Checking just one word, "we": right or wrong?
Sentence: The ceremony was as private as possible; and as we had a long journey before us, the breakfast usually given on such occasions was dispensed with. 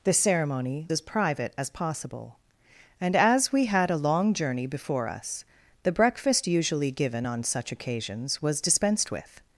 right